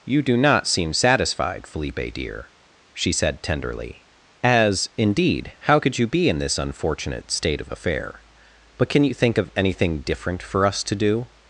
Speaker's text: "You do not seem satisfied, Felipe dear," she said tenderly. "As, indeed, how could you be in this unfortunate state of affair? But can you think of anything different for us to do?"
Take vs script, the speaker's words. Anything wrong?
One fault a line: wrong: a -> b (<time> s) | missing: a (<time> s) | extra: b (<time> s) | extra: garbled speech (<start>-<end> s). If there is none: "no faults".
no faults